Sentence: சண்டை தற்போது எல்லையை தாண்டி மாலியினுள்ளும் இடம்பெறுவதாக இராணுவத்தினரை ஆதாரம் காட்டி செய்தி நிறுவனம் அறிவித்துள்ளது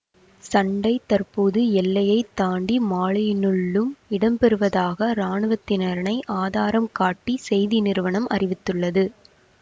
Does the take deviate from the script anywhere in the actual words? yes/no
no